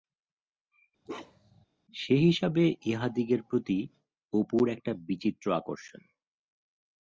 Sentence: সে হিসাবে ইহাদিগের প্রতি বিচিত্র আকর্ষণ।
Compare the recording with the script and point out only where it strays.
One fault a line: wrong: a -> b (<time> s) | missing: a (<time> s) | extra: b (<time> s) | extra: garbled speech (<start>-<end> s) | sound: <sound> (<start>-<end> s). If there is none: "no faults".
sound: bark (1.1-1.7 s)
extra: অপুর একটা (4.3 s)